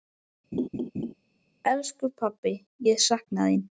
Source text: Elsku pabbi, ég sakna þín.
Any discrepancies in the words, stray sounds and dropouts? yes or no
yes